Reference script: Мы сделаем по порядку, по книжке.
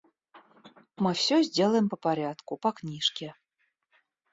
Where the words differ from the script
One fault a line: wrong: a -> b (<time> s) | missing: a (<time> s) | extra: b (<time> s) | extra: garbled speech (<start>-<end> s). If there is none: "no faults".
extra: всё (1.1 s)